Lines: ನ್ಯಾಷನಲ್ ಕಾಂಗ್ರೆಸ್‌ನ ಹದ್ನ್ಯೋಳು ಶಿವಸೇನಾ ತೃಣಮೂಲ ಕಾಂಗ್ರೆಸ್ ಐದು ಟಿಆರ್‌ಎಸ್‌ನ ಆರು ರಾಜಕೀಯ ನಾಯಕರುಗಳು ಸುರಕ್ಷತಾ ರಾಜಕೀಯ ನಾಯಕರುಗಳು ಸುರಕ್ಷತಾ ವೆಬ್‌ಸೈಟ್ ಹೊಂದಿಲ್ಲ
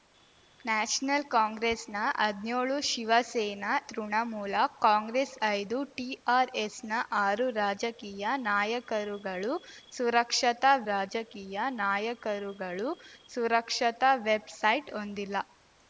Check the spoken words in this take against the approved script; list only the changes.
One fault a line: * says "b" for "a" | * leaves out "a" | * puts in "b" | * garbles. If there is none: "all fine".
all fine